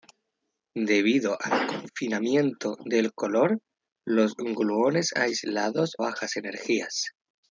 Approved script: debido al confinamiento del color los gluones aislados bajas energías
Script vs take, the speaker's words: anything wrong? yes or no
no